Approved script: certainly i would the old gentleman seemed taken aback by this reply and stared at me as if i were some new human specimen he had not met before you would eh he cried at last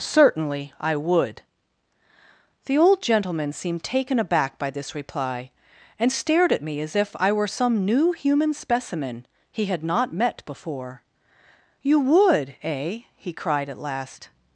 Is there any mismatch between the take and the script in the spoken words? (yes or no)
no